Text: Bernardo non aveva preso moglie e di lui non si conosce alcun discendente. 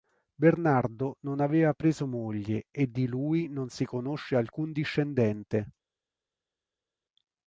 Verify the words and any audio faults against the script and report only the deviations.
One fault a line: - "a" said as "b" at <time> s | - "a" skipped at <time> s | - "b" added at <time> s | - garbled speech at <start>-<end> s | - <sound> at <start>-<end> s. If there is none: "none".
none